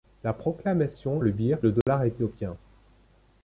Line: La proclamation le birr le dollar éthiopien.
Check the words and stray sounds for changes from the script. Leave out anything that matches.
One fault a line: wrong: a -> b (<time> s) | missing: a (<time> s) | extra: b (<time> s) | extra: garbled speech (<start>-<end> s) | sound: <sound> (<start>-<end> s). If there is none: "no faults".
sound: dropout (1.8-1.9 s)